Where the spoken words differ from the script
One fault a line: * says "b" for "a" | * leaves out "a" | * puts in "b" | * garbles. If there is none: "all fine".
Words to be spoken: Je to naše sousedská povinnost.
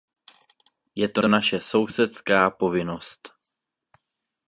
* puts in "to"